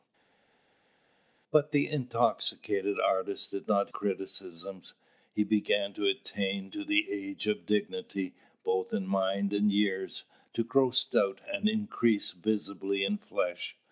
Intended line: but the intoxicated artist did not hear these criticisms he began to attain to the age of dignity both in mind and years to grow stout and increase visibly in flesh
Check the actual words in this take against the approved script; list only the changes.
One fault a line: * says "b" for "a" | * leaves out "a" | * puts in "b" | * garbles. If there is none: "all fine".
* leaves out "hear these"